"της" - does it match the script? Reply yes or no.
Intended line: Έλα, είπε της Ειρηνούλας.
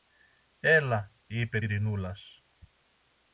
no